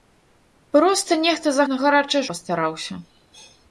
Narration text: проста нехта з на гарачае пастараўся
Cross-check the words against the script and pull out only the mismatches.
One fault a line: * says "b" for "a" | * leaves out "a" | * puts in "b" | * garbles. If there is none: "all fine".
all fine